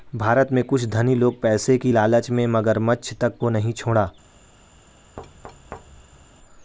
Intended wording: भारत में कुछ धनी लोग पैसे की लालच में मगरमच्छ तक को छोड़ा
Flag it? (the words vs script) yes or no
yes